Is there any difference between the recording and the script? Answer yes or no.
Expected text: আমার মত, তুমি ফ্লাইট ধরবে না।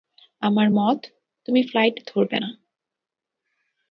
no